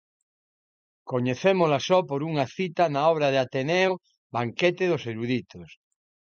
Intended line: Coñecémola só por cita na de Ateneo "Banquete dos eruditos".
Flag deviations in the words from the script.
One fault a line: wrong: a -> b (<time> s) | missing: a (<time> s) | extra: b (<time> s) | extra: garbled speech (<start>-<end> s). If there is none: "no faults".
extra: unha (2.3 s)
extra: obra (3.1 s)